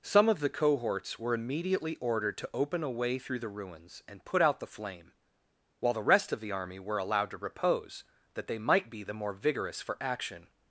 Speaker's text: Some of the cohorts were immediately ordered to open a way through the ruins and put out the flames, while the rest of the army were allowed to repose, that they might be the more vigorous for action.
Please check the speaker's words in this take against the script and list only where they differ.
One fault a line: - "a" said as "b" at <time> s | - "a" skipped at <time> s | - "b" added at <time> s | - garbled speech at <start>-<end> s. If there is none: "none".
- "flames" said as "flame" at 4.7 s